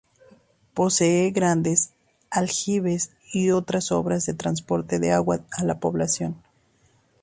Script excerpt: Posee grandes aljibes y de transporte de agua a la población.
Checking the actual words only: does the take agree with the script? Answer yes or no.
no